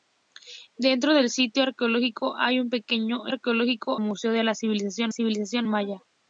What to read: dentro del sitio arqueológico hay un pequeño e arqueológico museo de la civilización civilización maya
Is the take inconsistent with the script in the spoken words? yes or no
no